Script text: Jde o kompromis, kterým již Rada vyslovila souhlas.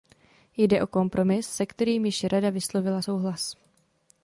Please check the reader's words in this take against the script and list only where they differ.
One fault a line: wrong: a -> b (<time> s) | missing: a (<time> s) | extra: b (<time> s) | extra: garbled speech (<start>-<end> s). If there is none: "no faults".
extra: se (1.5 s)